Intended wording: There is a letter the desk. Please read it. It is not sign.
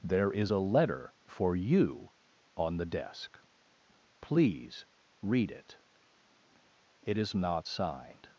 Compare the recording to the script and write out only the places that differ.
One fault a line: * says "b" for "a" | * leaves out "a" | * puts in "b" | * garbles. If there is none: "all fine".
* puts in "for you on"
* says "signed" for "sign"